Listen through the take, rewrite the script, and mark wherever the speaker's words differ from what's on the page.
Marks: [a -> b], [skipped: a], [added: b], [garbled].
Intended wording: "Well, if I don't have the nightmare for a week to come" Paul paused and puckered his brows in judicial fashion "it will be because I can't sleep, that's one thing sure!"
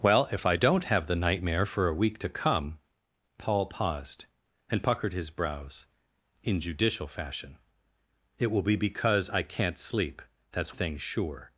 "Well, if I don't have the nightmare for a week to come" Paul paused and puckered his brows in judicial fashion "it will be because I can't sleep, that's [skipped: one] thing sure!"